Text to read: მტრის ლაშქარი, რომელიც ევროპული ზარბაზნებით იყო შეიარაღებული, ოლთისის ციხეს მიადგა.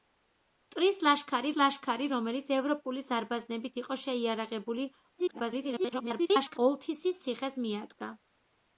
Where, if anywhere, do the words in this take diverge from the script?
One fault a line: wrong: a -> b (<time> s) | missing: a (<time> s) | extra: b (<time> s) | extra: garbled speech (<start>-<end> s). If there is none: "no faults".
extra: ლაშქარი (1.6 s)
extra: garbled speech (5.2-6.6 s)